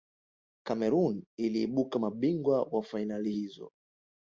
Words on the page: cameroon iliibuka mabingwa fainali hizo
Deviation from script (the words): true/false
true